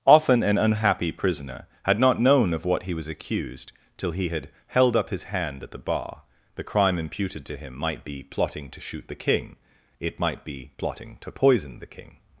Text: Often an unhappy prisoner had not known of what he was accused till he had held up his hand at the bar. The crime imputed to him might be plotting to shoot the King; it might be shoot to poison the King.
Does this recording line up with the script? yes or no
no